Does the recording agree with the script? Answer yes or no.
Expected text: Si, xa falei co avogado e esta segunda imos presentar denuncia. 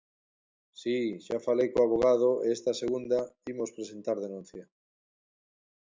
yes